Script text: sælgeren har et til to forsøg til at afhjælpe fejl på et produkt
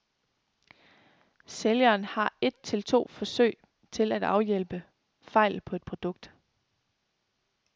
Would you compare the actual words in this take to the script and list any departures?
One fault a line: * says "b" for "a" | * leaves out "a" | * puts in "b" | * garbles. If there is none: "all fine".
all fine